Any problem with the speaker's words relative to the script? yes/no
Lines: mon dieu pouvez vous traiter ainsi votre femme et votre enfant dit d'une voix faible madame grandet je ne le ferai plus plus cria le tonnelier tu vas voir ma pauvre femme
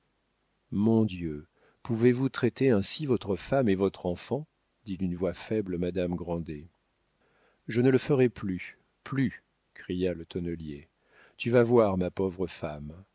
no